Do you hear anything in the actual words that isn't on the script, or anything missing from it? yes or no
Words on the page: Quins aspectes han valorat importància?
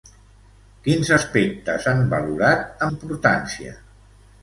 no